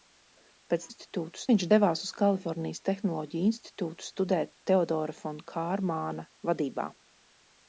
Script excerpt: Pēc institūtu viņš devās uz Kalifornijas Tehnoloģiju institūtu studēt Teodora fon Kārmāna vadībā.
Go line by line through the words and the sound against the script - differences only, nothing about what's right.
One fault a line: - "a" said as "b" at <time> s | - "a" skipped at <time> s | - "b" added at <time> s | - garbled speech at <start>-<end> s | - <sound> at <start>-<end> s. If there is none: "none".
none